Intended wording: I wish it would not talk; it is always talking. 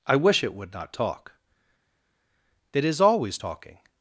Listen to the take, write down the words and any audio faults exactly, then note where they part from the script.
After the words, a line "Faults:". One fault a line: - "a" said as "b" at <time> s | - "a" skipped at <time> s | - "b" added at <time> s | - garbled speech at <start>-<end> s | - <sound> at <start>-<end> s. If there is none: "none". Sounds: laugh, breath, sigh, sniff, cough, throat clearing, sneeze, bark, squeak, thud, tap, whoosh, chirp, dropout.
I wish it would not talk; it is always talking.
Faults:
none